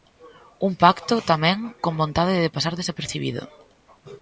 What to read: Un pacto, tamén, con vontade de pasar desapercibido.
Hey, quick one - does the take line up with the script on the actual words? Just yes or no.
yes